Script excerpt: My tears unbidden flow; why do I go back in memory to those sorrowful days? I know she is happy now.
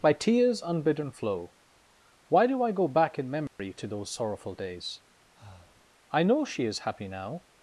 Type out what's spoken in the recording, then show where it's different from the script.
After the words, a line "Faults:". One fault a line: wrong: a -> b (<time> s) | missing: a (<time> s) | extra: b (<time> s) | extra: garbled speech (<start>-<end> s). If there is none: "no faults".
By tears unbidden flow; why do I go back in memory to those sorrowful days? I know she is happy now.
Faults:
wrong: My -> By (0.0 s)